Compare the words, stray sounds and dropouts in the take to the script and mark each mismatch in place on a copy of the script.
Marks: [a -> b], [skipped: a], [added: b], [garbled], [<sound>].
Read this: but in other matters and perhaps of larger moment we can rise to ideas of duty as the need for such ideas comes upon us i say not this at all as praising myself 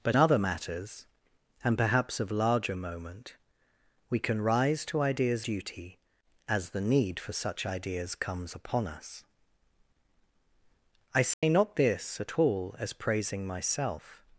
but [skipped: in] other matters and perhaps of larger moment we can rise to ideas [skipped: of] duty as the need for such ideas comes upon us i say [dropout] not this at all as praising myself